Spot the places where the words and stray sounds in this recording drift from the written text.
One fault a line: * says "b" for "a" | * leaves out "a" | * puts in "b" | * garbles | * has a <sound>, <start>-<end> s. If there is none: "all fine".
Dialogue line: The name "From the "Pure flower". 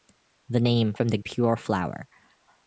all fine